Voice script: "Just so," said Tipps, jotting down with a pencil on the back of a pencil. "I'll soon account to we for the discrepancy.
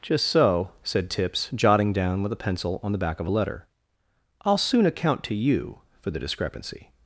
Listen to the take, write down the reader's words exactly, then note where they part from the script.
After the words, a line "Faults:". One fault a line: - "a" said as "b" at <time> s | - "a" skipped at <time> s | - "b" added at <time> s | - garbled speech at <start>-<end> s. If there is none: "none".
"Just so," said Tipps, jotting down with a pencil on the back of a letter. "I'll soon account to you for the discrepancy.
Faults:
- "pencil" said as "letter" at 3.3 s
- "we" said as "you" at 5.3 s